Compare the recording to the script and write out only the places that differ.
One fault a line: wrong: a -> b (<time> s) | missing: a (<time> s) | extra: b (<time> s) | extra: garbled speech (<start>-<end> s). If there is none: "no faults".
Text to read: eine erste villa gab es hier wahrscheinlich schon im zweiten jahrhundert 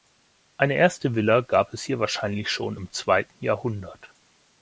no faults